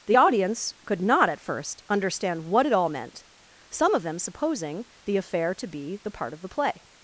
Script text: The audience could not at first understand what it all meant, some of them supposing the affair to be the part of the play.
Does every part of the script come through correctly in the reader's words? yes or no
yes